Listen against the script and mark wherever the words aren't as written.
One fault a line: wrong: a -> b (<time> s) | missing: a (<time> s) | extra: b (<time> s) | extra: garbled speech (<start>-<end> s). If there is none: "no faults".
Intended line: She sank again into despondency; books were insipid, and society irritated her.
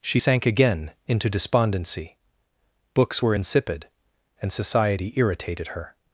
no faults